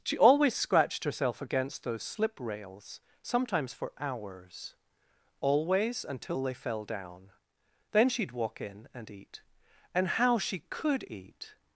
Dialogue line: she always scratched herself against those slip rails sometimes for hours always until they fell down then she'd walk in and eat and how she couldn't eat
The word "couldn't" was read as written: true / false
false